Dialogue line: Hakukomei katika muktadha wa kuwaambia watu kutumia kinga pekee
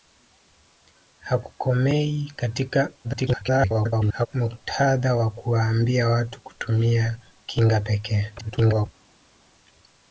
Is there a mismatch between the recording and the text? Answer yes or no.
yes